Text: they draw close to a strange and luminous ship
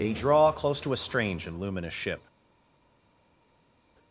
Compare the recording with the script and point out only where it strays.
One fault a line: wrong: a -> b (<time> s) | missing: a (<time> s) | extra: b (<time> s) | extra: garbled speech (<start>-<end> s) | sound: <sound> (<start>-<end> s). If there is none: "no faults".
no faults